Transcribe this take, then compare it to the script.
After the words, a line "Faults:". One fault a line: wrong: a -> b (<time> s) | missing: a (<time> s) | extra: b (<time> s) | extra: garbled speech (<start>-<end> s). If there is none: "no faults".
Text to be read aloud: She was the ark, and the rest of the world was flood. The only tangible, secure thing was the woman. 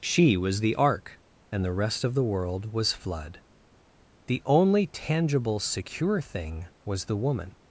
She was the ark, and the rest of the world was flood. The only tangible, secure thing was the woman.
Faults:
no faults